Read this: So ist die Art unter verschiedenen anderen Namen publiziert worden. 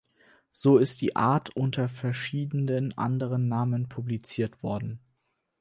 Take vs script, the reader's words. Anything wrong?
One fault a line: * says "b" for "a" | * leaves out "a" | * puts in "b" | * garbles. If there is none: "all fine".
all fine